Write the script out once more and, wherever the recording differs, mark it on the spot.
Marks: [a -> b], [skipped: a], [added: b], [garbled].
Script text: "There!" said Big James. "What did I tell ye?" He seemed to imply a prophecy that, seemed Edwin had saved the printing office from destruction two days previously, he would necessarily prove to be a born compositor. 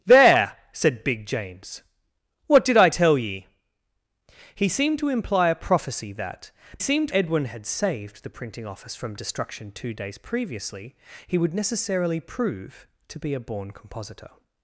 "There!" said Big James. "What did I tell ye?" He seemed to imply a prophecy that, seemed Edwin had saved the printing office from destruction two days previously, he would necessarily prove to be a born compositor.